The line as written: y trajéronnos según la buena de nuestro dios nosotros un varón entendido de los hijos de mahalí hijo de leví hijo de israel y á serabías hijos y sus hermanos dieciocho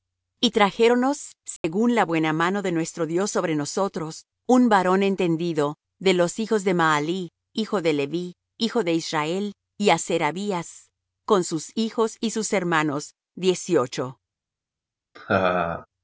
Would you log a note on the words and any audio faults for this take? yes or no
yes